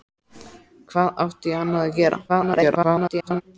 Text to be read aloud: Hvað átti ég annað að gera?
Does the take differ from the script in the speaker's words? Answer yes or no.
yes